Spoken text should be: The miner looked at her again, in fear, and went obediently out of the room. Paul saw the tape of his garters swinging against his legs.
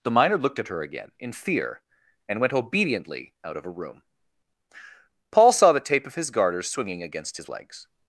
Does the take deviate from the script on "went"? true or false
false